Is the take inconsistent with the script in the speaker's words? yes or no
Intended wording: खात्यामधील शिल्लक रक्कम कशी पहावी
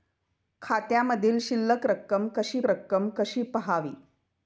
yes